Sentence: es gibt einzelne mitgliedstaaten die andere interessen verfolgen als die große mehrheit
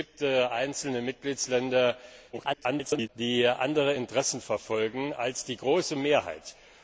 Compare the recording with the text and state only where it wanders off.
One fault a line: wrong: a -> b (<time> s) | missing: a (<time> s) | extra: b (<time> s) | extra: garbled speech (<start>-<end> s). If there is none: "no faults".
extra: garbled speech (2.3-3.1 s)